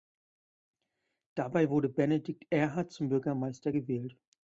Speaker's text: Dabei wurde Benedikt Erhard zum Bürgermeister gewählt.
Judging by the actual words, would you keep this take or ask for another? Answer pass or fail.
pass